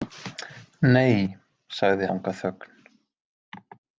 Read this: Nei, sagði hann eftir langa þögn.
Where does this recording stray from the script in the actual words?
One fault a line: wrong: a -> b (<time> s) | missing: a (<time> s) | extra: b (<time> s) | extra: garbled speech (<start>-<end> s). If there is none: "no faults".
missing: hann eftir (2.1 s)